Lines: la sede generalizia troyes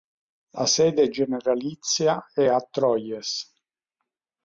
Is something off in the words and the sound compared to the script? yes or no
yes